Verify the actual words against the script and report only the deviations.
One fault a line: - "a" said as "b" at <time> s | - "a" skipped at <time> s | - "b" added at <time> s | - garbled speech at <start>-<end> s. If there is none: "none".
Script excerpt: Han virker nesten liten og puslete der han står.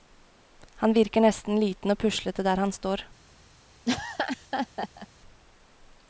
none